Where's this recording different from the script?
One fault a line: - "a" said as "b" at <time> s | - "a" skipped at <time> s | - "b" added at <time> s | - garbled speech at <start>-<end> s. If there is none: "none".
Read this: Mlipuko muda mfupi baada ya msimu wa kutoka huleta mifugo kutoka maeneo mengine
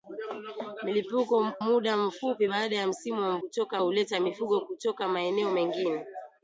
none